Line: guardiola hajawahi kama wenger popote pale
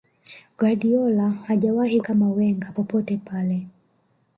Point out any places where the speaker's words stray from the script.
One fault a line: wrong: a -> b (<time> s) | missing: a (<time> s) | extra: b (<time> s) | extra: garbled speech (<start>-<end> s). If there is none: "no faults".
no faults